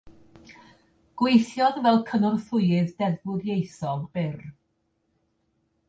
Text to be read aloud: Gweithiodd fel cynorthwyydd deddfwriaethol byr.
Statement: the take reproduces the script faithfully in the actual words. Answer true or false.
true